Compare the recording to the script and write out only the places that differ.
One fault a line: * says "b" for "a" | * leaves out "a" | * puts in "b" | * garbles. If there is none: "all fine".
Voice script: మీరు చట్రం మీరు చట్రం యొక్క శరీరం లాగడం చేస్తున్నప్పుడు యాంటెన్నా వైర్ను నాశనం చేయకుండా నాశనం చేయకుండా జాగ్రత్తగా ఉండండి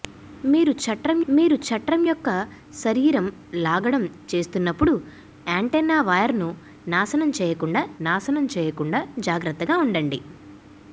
all fine